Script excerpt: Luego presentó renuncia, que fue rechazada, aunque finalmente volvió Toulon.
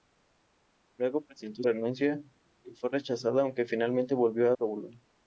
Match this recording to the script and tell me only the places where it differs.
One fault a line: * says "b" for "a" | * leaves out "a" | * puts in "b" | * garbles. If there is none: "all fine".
all fine